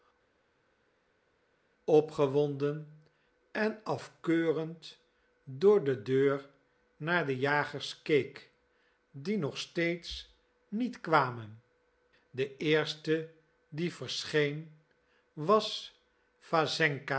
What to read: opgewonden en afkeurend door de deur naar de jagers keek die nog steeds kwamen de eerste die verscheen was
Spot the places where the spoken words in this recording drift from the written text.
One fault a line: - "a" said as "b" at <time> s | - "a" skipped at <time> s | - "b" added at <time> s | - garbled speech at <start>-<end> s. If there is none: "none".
- "niet" added at 10.7 s